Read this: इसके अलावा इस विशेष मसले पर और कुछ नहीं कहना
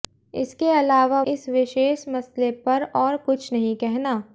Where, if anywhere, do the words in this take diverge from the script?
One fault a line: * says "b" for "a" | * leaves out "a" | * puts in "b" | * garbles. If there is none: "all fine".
all fine